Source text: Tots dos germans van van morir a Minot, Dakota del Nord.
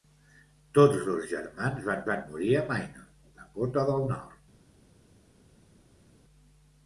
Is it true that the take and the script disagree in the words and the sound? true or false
false